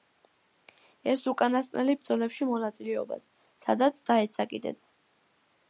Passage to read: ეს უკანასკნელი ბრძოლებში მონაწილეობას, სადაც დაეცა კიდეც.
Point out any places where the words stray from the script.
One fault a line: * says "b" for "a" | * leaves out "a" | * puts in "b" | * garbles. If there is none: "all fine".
all fine